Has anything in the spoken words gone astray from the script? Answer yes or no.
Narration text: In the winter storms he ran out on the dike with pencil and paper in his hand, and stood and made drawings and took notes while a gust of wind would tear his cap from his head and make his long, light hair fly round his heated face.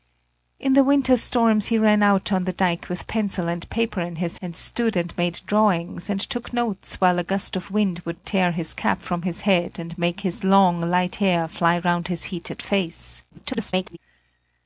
yes